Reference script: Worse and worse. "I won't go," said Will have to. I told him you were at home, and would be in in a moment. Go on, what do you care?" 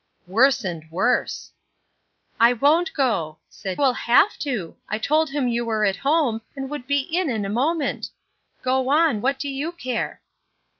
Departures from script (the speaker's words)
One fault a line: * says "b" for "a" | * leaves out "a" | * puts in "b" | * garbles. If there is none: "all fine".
all fine